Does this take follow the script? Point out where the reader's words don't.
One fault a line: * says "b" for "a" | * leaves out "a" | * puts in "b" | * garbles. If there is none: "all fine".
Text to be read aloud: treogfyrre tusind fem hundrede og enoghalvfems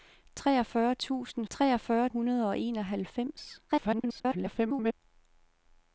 * says "treogfyrre" for "fem"
* garbles